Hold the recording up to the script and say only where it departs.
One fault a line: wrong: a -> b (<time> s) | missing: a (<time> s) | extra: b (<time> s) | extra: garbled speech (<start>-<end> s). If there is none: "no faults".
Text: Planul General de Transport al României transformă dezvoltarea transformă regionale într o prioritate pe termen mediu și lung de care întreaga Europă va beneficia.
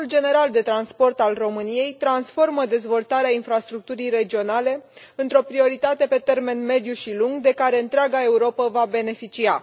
wrong: transformă -> infrastructurii (3.3 s)